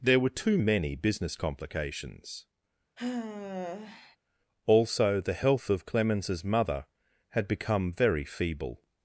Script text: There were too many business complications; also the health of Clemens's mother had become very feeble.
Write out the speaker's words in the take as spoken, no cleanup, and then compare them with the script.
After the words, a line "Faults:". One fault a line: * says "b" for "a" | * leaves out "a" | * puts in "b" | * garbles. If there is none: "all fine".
There were too many business complications; also the health of Clemens's mother had become very feeble.
Faults:
all fine